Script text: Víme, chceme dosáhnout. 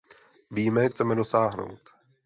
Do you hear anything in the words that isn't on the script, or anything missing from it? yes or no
no